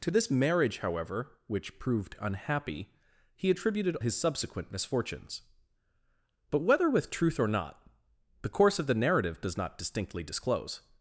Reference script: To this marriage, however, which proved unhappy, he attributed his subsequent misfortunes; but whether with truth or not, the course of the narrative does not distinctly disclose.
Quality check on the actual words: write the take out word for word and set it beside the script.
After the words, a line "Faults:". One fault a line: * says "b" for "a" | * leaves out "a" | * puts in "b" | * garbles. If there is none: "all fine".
To this marriage, however, which proved unhappy, he attributed his subsequent misfortunes; but whether with truth or not, the course of the narrative does not distinctly disclose.
Faults:
all fine